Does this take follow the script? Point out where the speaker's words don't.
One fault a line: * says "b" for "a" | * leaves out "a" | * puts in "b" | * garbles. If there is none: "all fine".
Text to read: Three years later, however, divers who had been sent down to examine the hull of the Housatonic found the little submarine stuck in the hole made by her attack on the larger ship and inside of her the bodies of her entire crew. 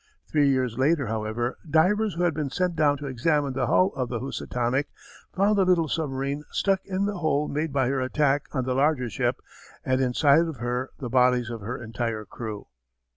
all fine